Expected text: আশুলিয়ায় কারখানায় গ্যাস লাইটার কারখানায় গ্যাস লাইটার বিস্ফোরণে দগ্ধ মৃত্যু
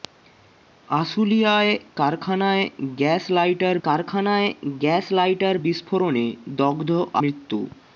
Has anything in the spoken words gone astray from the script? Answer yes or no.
no